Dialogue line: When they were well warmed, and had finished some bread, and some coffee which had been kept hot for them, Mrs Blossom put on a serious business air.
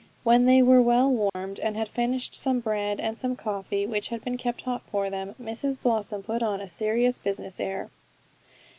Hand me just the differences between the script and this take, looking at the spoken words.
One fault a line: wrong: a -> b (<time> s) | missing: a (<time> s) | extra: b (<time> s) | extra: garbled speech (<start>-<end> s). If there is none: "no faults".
no faults